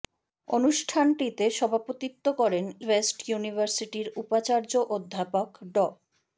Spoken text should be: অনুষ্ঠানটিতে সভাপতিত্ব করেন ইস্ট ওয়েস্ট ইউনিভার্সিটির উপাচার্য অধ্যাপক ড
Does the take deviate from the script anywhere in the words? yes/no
yes